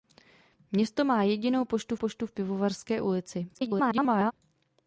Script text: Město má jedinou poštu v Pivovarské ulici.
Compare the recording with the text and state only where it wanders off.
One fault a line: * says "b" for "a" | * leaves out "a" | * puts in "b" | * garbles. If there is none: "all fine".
* puts in "poštu"
* garbles